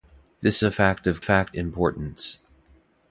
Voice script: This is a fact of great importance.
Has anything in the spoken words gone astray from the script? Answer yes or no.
yes